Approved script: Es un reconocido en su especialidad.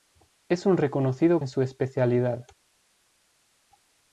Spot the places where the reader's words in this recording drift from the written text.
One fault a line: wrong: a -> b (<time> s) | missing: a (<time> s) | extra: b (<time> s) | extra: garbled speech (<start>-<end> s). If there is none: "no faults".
no faults